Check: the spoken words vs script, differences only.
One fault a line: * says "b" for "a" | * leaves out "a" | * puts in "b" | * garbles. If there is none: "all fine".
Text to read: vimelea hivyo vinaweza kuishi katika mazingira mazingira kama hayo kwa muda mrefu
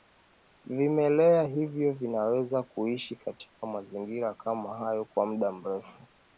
* leaves out "mazingira"